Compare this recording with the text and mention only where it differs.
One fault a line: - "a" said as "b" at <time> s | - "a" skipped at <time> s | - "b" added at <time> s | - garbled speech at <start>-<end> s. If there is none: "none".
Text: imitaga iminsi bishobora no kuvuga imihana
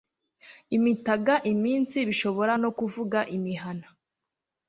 none